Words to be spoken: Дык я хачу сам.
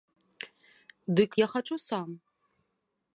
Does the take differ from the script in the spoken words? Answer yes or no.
no